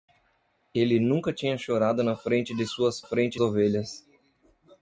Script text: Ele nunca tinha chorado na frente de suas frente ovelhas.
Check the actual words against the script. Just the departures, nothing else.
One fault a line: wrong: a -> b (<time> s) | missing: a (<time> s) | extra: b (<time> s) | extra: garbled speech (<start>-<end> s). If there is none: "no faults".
no faults